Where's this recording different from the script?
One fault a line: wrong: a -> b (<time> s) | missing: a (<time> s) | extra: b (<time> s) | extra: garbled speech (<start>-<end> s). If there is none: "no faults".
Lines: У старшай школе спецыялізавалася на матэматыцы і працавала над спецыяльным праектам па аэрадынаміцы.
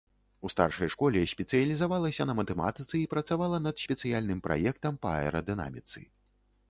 no faults